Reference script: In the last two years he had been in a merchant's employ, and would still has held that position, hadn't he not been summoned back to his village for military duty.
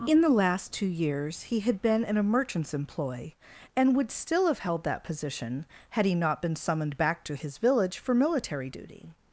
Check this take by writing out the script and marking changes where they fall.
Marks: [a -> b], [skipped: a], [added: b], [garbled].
In the last two years he had been in a merchant's employ, and would still [has -> have] held that position, [hadn't -> had] he not been summoned back to his village for military duty.